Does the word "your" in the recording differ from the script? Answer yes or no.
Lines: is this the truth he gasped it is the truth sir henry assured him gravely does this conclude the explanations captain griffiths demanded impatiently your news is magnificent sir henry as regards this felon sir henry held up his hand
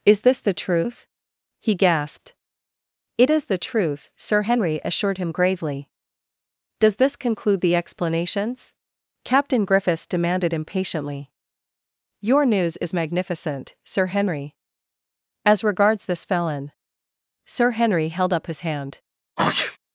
no